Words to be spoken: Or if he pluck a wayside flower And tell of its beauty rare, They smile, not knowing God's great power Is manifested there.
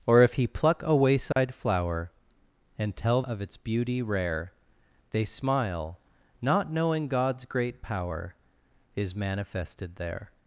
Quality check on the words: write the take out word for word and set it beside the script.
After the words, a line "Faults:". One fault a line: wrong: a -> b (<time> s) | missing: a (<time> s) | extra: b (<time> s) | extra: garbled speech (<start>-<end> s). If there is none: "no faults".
Or if he pluck a wayside flower And tell of its beauty rare, They smile, not knowing God's great power Is manifested there.
Faults:
no faults